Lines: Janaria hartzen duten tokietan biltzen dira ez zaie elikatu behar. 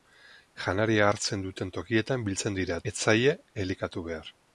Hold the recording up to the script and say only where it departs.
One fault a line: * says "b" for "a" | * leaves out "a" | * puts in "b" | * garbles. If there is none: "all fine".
all fine